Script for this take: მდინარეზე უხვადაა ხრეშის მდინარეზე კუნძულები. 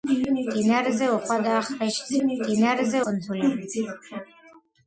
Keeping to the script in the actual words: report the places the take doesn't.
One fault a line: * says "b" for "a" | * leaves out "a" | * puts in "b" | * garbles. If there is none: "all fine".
all fine